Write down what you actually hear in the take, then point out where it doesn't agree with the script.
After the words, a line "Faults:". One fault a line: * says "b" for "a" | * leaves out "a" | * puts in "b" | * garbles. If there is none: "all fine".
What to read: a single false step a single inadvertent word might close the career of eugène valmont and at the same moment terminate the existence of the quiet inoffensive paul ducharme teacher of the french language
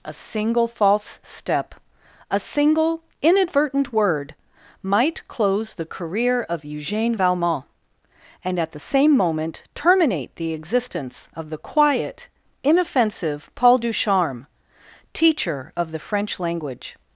a single false step a single inadvertent word might close the career of eugène valmont and at the same moment terminate the existence of the quiet inoffensive paul ducharme teacher of the french language
Faults:
all fine